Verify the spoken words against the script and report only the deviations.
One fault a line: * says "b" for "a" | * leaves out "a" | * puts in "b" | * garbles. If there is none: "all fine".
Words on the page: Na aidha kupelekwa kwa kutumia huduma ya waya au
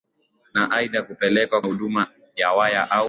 * leaves out "kwa kutumia"